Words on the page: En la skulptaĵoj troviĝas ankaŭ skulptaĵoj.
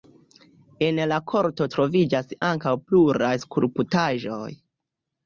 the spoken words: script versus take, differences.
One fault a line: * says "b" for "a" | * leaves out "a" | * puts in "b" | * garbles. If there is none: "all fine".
* says "korto" for "skulptaĵoj"
* puts in "pluraj"